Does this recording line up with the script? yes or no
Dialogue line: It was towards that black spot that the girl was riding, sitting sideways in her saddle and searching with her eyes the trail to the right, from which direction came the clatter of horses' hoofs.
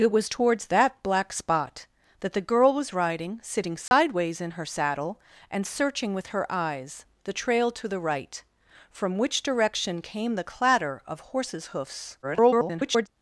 no